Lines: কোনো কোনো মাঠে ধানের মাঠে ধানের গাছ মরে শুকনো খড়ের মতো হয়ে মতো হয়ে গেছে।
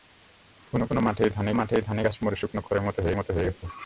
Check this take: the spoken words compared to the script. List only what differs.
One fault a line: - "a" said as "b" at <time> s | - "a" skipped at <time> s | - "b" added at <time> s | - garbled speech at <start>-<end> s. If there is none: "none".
none